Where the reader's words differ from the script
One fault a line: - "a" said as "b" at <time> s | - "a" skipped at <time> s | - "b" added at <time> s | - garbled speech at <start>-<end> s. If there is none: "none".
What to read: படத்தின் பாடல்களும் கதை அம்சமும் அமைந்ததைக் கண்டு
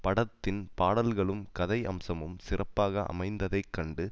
- "சிறப்பாக" added at 2.4 s